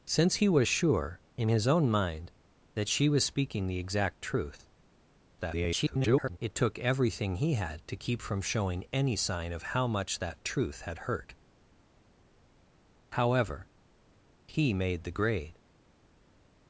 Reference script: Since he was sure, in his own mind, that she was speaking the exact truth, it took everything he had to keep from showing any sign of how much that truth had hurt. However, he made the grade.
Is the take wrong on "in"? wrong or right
right